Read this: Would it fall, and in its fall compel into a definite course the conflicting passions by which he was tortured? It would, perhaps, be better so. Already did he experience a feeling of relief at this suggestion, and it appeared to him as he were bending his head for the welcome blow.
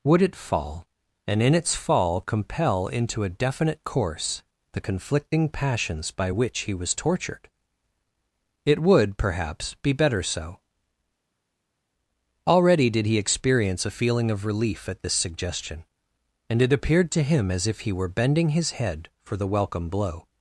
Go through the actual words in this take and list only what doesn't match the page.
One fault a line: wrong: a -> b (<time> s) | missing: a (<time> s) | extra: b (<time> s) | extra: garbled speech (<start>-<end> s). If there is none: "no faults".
extra: if (17.7 s)